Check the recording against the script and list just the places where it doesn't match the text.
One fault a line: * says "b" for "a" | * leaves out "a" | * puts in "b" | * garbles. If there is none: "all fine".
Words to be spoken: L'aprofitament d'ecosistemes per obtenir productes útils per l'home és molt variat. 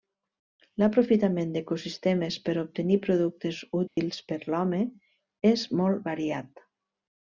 all fine